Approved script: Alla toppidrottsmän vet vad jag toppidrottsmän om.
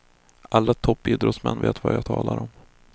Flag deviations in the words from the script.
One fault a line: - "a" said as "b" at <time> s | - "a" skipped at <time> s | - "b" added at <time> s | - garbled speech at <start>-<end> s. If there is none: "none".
- "toppidrottsmän" said as "talar" at 2.0 s